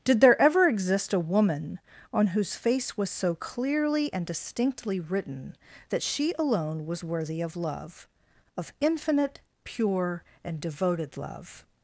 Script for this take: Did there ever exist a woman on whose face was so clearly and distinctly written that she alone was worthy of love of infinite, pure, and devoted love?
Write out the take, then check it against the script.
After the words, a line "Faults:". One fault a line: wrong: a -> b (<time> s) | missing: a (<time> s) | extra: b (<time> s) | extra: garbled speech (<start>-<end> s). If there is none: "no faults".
Did there ever exist a woman on whose face was so clearly and distinctly written that she alone was worthy of love of infinite, pure, and devoted love?
Faults:
no faults